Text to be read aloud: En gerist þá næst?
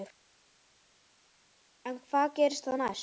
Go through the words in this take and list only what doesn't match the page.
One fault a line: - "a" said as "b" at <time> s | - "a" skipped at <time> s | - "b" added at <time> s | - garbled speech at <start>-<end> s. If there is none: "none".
- "hvað" added at 2.1 s